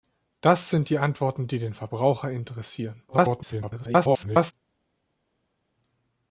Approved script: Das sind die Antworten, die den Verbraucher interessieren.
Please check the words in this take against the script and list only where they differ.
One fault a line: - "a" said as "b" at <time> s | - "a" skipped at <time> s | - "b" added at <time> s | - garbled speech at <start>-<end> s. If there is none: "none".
- garbled speech at 3.1-4.5 s